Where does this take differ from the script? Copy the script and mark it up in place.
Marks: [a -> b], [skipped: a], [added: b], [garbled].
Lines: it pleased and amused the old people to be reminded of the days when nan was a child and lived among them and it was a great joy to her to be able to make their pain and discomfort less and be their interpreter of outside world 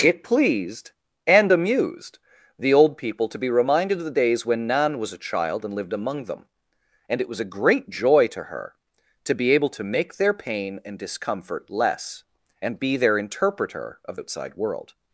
it pleased and amused the old people to be reminded of the days when nan was a child and lived among them and it was a great joy to her to be able to make their pain and discomfort less and be their interpreter of outside world